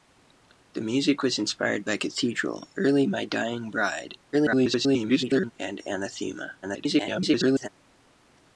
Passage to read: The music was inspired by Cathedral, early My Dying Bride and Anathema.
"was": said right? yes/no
yes